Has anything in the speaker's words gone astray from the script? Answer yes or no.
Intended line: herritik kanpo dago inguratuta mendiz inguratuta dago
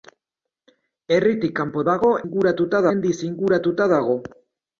no